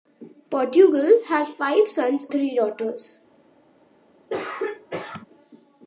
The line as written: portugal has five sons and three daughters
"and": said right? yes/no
no